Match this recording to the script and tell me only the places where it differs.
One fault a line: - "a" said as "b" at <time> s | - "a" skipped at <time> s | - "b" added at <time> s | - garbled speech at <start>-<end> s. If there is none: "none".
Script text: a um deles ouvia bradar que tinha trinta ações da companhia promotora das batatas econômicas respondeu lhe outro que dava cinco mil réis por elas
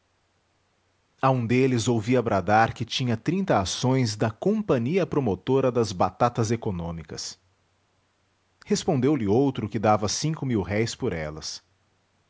none